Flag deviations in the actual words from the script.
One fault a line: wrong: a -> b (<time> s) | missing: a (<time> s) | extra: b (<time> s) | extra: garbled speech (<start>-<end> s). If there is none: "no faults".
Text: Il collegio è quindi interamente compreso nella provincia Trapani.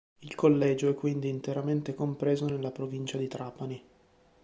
extra: di (3.2 s)